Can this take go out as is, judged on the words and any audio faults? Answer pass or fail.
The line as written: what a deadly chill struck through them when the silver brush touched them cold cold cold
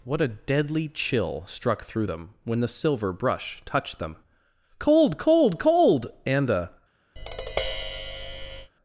fail